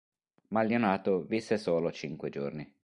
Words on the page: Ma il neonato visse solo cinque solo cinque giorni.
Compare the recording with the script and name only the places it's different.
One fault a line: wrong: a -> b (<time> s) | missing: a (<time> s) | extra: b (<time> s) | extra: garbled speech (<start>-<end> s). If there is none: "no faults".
missing: solo cinque (2.3 s)